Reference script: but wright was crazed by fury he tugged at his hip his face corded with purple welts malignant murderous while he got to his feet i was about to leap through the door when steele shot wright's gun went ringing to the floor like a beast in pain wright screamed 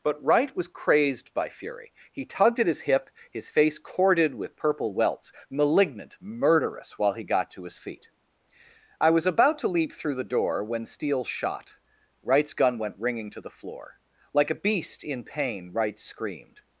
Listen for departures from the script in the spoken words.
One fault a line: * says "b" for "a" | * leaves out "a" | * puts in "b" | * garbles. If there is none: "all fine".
all fine